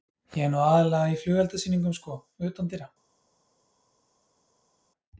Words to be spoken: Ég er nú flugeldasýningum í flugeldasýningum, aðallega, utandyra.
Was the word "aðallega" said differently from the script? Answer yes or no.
yes